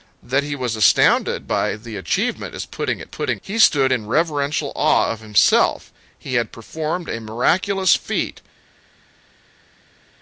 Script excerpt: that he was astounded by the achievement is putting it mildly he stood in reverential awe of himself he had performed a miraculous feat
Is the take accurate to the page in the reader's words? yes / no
no